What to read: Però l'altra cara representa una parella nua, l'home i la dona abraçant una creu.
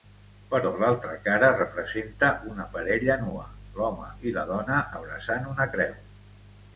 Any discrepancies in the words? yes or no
no